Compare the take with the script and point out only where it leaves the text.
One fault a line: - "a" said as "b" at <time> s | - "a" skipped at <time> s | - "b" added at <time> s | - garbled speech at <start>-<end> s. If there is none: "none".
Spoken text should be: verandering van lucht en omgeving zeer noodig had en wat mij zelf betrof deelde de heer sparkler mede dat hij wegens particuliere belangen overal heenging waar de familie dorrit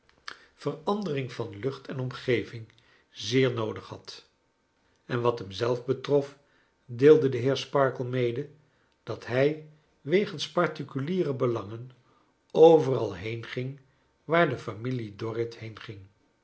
- "mij" said as "hem" at 5.4 s